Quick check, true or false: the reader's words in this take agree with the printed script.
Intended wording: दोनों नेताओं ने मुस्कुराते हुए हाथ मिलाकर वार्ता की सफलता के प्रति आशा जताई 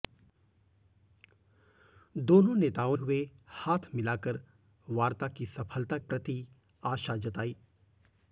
false